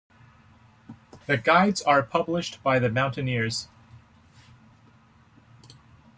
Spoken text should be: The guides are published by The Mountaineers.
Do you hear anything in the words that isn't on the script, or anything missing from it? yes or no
no